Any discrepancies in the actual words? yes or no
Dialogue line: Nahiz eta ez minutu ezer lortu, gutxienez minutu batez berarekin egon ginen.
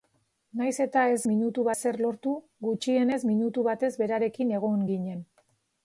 no